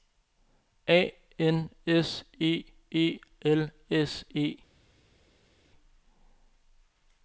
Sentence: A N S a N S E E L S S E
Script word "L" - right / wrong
right